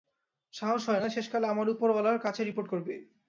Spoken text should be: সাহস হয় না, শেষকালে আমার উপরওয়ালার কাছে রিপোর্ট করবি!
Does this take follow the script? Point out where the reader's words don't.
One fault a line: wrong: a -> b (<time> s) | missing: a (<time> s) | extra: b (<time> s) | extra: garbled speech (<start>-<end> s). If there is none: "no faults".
no faults